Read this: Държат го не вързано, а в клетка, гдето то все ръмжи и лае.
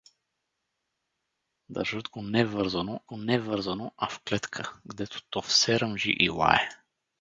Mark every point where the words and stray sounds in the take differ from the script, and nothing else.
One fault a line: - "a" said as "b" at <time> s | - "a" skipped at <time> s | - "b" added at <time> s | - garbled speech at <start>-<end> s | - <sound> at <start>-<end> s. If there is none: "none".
- "го не вързано" added at 3.0 s